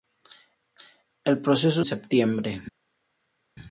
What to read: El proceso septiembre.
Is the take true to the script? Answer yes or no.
yes